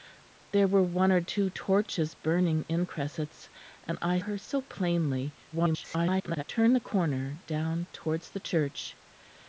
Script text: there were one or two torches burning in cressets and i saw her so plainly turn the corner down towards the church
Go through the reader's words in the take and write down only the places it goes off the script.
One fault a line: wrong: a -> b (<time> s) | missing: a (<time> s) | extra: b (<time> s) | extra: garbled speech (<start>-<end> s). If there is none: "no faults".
missing: saw (4.2 s)
extra: garbled speech (5.5-6.4 s)